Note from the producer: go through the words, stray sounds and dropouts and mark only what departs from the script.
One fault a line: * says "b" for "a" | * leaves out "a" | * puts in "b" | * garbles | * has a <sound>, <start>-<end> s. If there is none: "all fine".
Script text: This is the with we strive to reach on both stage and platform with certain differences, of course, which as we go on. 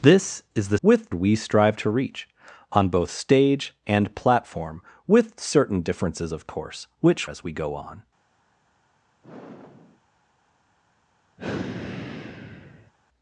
* has a sigh, 9.2-10.0 s
* has a sigh, 11.4-12.9 s